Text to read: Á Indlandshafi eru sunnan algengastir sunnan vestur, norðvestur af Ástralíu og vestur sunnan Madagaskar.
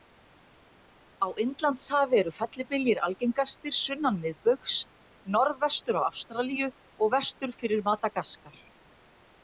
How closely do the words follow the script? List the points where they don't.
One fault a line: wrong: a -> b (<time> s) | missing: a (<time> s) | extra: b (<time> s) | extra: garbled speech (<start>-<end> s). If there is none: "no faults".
wrong: sunnan -> fellibyljir (2.4 s)
wrong: vestur -> miðbaugs (4.2 s)
wrong: sunnan -> fyrir (7.6 s)